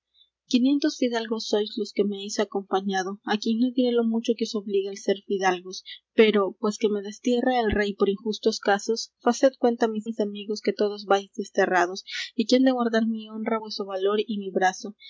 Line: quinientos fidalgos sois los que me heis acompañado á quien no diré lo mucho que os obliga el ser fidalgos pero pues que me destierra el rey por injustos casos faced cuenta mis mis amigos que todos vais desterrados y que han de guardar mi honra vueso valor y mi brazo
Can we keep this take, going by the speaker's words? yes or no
yes